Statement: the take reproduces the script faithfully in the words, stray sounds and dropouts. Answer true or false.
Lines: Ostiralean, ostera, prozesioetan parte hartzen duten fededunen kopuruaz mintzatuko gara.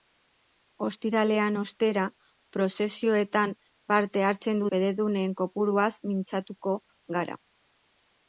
false